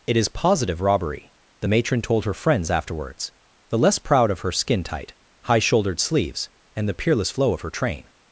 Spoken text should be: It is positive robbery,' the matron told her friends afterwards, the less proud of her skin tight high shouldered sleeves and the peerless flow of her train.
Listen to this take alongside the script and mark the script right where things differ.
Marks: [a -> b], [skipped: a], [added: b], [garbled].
It is positive robbery,' the matron told her friends afterwards, the less proud of her skin tight high shouldered sleeves and the peerless flow of her train.